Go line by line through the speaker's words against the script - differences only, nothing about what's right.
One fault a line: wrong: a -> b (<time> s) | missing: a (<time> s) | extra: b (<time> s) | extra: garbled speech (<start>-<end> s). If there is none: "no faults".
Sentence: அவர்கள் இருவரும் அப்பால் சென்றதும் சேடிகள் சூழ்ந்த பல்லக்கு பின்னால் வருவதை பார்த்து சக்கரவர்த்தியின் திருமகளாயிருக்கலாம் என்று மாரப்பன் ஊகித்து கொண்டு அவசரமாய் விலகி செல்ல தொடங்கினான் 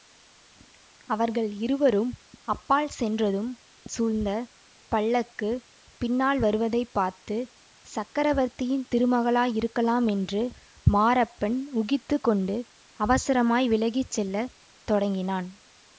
missing: சேடிகள் (3.5 s)